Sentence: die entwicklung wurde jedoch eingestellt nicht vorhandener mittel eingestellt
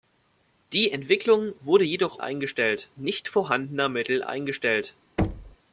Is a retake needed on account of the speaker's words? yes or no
no